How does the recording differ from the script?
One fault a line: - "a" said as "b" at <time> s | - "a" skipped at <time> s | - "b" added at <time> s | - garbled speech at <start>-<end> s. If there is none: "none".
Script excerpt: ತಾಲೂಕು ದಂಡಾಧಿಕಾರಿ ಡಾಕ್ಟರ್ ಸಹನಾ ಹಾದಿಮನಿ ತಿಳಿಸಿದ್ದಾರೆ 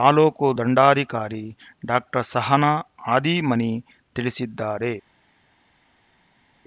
none